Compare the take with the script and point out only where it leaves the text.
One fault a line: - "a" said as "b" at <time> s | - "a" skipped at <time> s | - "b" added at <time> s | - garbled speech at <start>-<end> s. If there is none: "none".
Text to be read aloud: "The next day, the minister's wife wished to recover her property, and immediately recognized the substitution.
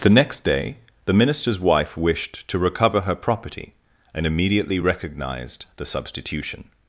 none